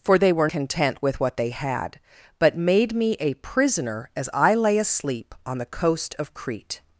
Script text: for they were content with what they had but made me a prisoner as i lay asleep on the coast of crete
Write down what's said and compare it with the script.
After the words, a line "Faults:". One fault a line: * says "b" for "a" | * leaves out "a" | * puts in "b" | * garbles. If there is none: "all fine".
for they were content with what they had but made me a prisoner as i lay asleep on the coast of crete
Faults:
all fine